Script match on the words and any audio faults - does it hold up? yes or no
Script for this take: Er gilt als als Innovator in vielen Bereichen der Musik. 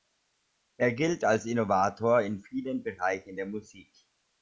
no